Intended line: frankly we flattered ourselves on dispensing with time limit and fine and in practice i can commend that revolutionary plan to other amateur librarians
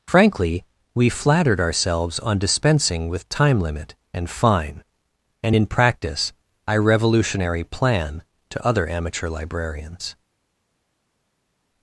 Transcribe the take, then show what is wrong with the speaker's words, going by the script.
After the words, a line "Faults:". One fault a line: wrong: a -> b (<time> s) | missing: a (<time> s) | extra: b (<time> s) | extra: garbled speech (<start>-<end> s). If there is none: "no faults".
frankly we flattered ourselves on dispensing with time limit and fine and in practice i revolutionary plan to other amateur librarians
Faults:
missing: can commend that (6.8 s)